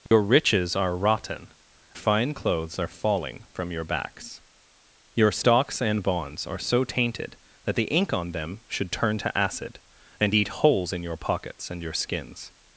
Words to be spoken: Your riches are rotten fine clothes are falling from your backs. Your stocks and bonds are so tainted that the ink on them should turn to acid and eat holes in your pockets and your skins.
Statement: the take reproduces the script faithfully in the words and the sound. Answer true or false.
false